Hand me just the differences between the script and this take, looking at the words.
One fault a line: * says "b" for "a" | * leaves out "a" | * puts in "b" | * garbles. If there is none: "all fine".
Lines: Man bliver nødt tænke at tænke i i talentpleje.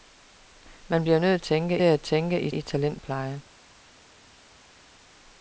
all fine